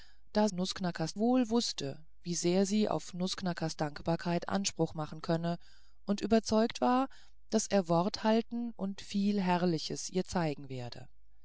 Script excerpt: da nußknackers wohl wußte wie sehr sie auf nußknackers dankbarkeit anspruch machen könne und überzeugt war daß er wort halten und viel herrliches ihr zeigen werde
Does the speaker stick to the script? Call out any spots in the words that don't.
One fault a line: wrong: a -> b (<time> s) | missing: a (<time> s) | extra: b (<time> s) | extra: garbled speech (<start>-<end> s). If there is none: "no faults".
no faults